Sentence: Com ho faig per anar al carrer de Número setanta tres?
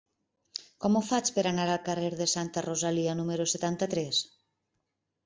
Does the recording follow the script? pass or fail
fail